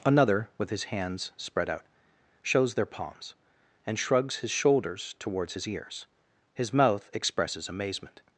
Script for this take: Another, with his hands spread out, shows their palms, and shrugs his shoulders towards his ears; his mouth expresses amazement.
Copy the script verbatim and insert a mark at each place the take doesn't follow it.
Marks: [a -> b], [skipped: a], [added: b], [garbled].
Another, with his hands spread out, shows their palms, and shrugs his shoulders towards his ears; his mouth expresses amazement.